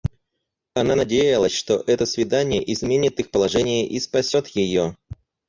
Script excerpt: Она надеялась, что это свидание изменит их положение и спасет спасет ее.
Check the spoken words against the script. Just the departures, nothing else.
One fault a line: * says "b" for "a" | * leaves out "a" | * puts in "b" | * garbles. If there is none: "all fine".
* leaves out "спасет"